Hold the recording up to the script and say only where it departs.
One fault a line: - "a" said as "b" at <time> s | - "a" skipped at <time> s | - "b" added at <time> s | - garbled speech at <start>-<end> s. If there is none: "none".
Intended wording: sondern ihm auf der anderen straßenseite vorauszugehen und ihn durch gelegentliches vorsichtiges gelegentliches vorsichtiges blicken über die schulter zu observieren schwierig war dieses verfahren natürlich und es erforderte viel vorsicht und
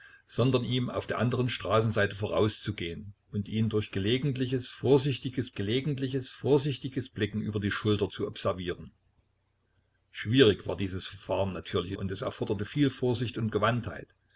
none